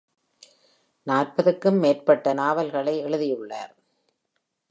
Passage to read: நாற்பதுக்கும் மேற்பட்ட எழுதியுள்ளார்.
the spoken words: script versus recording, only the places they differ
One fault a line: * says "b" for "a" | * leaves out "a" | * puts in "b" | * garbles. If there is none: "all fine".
* puts in "நாவல்களை"